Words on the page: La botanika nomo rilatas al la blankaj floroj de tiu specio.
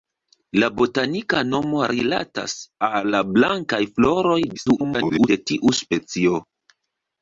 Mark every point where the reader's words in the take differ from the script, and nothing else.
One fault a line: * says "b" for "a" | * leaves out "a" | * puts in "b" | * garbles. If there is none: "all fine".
* garbles